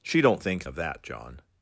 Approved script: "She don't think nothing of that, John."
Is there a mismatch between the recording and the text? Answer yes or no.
yes